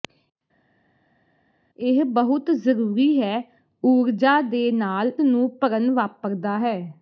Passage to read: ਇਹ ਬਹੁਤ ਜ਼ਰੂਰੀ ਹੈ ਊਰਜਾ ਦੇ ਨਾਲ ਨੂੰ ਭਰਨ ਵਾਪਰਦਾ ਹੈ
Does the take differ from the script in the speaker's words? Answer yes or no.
no